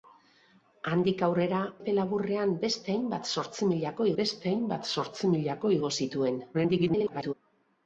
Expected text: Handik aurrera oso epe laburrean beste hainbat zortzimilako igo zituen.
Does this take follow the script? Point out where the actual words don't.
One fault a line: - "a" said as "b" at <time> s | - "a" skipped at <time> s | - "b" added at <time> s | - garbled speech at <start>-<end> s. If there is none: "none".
- "oso" skipped at 1.6 s
- "beste hainbat zortzimilako" added at 4.2 s
- garbled speech at 6.5-7.3 s